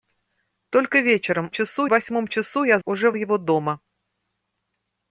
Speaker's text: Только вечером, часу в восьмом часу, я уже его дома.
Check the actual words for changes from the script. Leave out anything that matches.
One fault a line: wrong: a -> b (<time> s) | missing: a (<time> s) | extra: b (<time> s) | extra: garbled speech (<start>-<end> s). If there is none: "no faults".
no faults